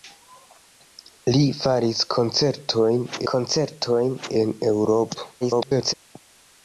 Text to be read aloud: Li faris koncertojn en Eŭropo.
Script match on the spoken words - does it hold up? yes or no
no